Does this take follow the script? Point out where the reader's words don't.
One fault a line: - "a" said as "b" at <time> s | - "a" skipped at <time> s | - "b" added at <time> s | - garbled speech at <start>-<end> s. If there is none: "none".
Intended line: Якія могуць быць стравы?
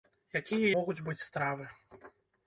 none